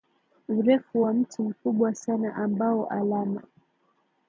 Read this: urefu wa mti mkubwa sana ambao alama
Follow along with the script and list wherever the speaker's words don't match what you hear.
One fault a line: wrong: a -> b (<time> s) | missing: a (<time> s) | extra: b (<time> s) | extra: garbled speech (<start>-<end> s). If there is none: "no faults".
no faults